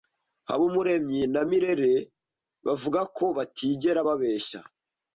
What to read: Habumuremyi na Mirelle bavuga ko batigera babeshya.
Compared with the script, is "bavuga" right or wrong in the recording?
right